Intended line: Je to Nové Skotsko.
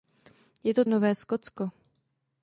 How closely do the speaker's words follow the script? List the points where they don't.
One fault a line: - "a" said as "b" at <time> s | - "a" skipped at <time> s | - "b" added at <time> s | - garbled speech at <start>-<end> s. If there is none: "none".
none